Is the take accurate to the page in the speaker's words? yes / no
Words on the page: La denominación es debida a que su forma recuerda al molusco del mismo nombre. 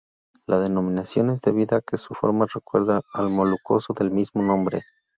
yes